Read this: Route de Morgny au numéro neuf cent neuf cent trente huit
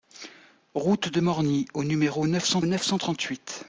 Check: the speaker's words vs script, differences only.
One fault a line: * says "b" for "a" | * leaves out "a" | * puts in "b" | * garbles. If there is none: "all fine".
all fine